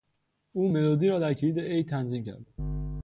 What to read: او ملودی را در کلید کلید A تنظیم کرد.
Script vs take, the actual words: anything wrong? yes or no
yes